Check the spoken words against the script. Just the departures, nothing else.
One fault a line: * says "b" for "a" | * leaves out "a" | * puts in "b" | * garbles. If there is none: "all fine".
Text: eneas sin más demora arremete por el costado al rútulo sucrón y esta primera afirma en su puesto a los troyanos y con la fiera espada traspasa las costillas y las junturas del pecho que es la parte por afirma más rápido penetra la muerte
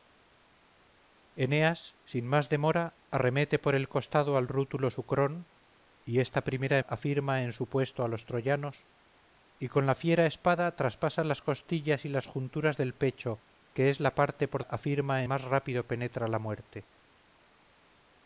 all fine